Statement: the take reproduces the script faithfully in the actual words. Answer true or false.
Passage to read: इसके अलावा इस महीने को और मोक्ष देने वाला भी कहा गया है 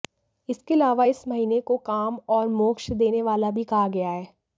false